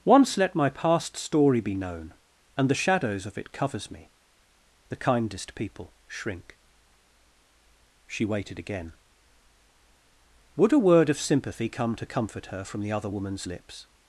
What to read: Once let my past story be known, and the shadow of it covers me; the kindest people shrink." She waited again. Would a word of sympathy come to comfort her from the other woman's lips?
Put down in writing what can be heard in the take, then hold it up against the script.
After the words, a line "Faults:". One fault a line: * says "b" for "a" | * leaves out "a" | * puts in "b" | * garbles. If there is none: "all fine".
Once let my past story be known, and the shadows of it covers me; the kindest people shrink." She waited again. Would a word of sympathy come to comfort her from the other woman's lips?
Faults:
* says "shadows" for "shadow"